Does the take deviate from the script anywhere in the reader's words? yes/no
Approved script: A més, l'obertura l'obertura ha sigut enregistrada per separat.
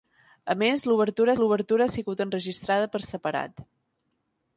no